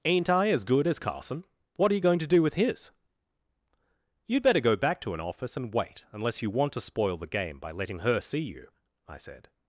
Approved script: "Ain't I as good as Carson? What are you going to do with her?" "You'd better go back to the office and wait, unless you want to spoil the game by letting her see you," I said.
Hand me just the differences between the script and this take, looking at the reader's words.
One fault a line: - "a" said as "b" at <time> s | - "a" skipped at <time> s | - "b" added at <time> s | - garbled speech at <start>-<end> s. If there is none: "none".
- "her" said as "his" at 2.5 s
- "the" said as "an" at 5.1 s